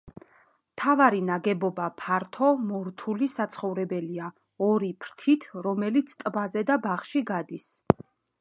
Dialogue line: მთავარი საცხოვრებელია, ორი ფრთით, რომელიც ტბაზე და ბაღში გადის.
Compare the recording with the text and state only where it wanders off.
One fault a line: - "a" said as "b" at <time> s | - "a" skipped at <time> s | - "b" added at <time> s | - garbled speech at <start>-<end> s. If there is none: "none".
- "ნაგებობა ფართო მორთული" added at 1.2 s